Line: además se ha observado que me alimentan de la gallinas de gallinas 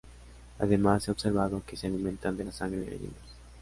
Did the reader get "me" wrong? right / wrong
wrong